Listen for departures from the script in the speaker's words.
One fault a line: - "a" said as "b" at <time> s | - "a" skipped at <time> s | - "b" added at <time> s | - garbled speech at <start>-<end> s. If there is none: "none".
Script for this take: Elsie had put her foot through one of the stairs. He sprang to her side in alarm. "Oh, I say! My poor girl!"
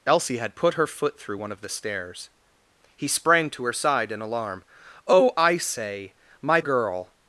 - "poor" skipped at 6.6 s